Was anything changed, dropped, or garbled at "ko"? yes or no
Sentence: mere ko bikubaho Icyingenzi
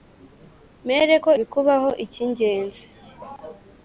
no